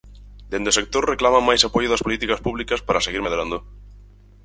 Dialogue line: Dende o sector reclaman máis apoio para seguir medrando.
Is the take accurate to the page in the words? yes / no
no